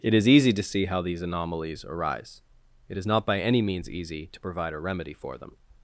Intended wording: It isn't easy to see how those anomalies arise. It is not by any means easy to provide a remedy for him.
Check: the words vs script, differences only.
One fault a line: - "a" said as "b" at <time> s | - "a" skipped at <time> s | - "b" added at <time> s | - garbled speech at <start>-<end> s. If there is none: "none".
- "isn't" said as "is" at 0.1 s
- "those" said as "these" at 1.0 s
- "him" said as "them" at 5.4 s